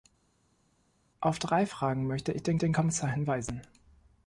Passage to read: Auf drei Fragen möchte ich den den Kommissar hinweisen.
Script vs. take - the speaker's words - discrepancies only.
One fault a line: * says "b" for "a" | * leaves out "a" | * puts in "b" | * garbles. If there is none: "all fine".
all fine